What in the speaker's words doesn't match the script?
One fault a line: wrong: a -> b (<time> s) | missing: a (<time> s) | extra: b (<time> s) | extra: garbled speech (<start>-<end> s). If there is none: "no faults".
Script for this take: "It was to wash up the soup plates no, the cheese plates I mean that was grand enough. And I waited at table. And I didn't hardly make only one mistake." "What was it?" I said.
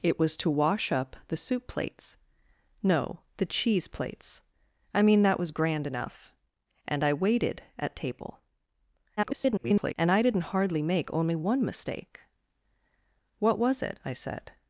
extra: garbled speech (9.2-9.9 s)